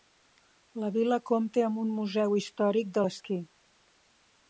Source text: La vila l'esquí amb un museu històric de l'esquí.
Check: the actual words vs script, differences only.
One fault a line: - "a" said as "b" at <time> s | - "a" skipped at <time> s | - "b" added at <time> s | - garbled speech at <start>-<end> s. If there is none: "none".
- "l'esquí" said as "compta" at 1.3 s